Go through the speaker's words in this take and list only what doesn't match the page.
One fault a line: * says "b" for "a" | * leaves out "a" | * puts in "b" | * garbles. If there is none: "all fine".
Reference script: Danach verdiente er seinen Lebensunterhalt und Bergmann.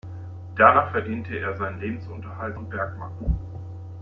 all fine